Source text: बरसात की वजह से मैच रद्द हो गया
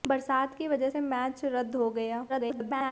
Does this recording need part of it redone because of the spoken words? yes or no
yes